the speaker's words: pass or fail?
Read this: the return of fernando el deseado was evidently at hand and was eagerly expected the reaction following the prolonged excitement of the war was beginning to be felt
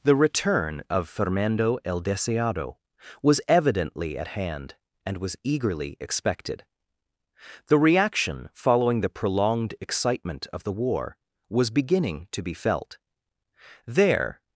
fail